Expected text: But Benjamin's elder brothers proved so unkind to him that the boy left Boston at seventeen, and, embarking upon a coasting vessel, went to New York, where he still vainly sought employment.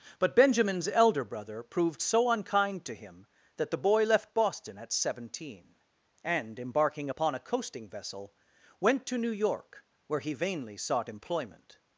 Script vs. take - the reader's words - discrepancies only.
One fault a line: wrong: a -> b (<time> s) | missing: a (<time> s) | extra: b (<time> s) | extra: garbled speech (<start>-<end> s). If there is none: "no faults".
wrong: brothers -> brother (1.2 s)
missing: still (10.3 s)